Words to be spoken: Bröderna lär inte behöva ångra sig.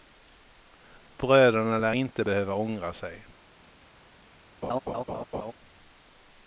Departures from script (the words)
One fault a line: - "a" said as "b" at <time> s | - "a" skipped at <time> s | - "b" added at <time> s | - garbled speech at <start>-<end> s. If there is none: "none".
none